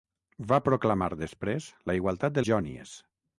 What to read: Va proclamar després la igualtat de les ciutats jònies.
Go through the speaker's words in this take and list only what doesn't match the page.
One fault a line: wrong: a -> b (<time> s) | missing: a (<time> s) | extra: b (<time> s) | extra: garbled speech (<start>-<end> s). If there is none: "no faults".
missing: les ciutats (2.5 s)